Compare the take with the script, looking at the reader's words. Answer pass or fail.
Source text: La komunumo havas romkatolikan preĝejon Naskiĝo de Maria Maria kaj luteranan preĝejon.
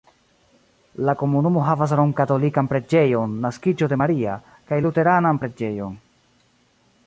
fail